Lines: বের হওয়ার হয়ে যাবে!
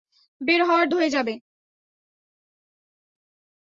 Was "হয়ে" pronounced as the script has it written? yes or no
yes